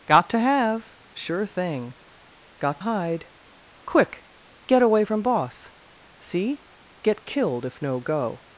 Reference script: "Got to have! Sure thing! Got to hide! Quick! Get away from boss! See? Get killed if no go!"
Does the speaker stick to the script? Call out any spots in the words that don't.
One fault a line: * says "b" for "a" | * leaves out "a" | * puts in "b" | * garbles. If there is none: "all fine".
* leaves out "to"